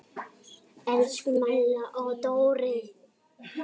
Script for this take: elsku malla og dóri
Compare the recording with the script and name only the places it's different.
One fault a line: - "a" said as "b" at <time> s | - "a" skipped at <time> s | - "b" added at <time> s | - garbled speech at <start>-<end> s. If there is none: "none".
none